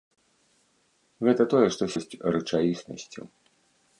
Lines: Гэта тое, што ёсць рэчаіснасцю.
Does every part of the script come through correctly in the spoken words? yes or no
yes